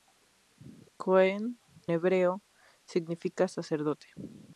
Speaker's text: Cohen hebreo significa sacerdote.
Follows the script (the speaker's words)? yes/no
yes